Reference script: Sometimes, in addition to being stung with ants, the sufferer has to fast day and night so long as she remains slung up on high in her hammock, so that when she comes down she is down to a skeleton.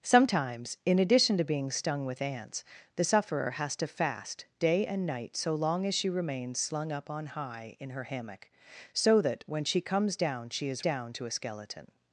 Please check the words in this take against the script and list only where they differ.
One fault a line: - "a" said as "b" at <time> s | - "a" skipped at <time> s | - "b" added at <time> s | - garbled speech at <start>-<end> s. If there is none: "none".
none